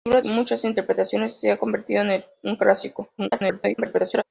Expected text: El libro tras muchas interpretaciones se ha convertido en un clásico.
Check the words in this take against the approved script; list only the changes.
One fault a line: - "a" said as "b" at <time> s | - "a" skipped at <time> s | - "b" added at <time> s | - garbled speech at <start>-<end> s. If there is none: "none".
- "tras" skipped at 0.2 s
- garbled speech at 3.2-4.2 s